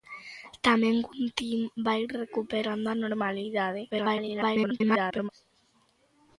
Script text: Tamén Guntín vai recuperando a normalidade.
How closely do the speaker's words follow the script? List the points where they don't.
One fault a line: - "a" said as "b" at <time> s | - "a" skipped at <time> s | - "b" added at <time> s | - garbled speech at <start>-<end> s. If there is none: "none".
- garbled speech at 3.9-5.3 s